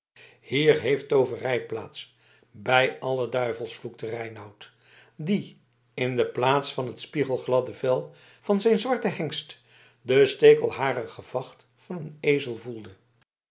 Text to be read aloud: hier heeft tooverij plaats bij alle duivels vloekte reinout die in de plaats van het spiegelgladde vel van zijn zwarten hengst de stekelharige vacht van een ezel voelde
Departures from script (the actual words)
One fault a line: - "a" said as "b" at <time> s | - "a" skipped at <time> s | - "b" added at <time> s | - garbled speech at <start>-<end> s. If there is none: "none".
none